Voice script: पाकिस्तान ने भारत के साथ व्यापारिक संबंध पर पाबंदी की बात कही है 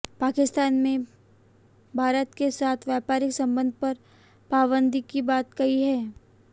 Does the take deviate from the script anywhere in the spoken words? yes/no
no